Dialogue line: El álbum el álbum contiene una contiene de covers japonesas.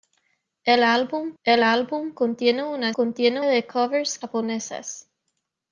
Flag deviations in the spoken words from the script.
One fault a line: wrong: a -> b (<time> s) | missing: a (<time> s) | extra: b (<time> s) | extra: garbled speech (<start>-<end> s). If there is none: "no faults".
no faults